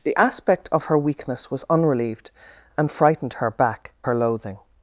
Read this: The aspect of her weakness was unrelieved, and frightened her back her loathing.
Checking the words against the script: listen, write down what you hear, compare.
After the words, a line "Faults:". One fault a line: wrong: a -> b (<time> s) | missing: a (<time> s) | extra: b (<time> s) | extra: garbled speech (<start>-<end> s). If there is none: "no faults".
The aspect of her weakness was unrelieved, and frightened her back her loathing.
Faults:
no faults